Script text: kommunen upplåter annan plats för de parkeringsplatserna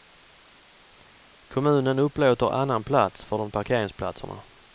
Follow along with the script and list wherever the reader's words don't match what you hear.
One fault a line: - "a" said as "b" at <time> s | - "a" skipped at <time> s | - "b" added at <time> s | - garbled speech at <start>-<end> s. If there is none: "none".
none